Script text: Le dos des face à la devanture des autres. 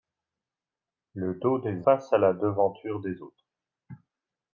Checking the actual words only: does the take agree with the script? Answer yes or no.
yes